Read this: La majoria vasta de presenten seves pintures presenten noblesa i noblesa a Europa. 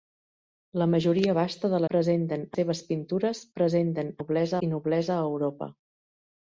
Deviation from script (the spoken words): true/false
false